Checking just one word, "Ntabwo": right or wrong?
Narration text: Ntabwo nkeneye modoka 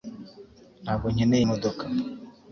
right